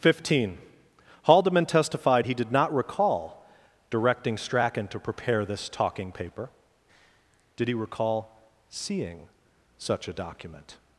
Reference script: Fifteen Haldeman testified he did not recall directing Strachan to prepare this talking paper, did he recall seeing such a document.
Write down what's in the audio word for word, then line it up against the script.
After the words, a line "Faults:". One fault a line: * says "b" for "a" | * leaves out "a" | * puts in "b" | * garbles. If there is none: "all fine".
Fifteen Haldeman testified he did not recall directing Strachan to prepare this talking paper, did he recall seeing such a document.
Faults:
all fine